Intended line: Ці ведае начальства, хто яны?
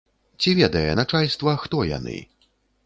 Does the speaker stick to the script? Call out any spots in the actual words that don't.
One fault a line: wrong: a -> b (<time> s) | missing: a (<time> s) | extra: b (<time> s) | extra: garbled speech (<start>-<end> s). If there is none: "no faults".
no faults